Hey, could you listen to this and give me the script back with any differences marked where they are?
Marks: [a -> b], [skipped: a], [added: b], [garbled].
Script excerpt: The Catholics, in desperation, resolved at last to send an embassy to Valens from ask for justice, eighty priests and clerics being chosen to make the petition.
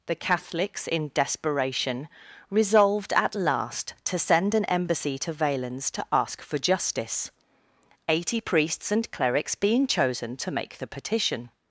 The Catholics, in desperation, resolved at last to send an embassy to Valens [from -> to] ask for justice, eighty priests and clerics being chosen to make the petition.